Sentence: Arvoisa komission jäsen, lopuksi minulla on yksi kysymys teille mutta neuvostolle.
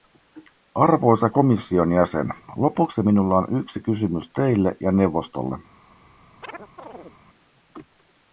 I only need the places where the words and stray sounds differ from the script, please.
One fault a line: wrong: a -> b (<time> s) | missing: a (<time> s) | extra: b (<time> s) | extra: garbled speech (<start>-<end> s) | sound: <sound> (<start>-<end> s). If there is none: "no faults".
wrong: mutta -> ja (4.8 s)
sound: chirp (6.4-7.2 s)